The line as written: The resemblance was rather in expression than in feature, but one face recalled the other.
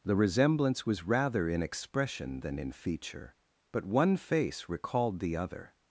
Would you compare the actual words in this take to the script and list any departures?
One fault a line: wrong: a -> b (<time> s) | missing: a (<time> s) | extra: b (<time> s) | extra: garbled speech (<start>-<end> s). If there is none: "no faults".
no faults